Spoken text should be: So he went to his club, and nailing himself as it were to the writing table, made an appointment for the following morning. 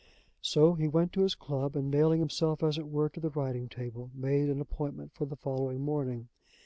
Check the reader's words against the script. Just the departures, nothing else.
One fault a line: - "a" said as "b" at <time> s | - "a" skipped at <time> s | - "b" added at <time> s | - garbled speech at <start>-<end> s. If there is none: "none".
none